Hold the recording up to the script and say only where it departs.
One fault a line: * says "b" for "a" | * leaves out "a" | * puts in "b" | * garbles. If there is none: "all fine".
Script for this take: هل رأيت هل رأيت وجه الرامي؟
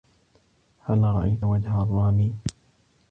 * leaves out "هل رأيت"